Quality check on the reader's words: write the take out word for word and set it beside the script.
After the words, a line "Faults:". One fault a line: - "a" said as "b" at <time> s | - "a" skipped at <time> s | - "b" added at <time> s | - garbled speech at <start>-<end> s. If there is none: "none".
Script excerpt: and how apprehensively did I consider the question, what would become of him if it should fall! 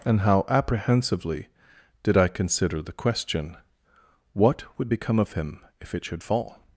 and how apprehensively did I consider the question, what would become of him if it should fall!
Faults:
none